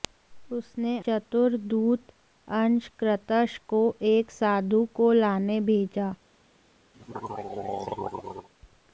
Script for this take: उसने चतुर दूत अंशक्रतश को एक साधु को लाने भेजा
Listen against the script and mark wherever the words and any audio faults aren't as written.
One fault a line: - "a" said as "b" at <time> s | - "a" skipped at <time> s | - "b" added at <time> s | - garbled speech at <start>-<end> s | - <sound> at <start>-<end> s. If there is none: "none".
- throat clearing at 6.9-8.5 s